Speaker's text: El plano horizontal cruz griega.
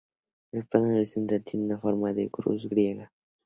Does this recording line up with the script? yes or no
no